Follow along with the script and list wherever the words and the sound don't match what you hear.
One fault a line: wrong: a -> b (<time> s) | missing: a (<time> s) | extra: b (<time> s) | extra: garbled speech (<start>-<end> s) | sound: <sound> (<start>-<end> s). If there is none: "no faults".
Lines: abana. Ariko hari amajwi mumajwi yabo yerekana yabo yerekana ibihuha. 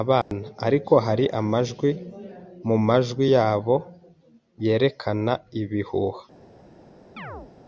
sound: dropout (0.2-0.3 s)
missing: yabo yerekana (5.3 s)
sound: chirp (7.2-7.5 s)